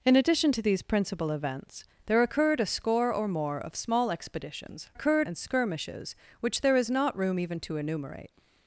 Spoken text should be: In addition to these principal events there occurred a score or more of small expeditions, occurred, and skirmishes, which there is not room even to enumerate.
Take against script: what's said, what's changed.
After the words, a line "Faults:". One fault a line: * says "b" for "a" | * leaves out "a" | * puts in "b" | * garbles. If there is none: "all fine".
In addition to these principal events there occurred a score or more of small expeditions, occurred, and skirmishes, which there is not room even to enumerate.
Faults:
all fine